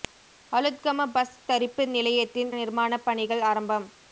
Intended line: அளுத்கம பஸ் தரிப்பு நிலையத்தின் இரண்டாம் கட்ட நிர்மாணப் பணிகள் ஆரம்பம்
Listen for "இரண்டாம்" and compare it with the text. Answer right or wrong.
wrong